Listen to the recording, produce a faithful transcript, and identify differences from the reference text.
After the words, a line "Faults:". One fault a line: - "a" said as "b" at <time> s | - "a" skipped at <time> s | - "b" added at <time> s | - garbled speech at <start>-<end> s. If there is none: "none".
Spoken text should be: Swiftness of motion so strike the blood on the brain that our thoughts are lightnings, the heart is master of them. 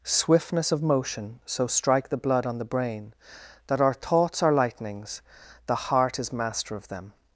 Swiftness of motion so strike the blood on the brain that our thoughts are lightnings, the heart is master of them.
Faults:
none